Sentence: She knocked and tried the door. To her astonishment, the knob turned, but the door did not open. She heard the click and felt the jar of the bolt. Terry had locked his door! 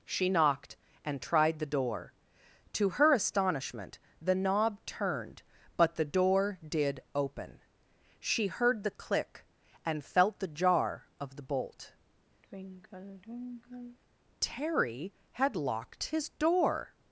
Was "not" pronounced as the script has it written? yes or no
no